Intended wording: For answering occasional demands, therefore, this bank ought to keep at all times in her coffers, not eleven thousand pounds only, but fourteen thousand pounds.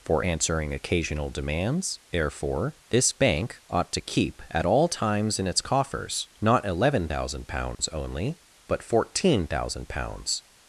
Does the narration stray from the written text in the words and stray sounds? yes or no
yes